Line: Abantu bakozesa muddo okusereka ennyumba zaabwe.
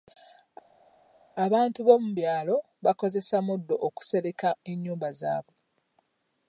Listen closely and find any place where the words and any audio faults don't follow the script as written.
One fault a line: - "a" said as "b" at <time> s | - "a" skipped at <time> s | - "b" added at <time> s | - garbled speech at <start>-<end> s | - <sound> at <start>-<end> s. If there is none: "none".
- "b'omu byalo" added at 1.9 s